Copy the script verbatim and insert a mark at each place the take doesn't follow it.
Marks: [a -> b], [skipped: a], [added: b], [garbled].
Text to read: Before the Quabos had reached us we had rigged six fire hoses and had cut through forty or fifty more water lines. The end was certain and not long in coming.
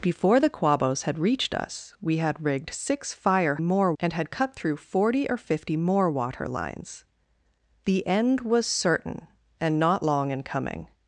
Before the Quabos had reached us we had rigged six fire [hoses -> more] and had cut through forty or fifty more water lines. The end was certain and not long in coming.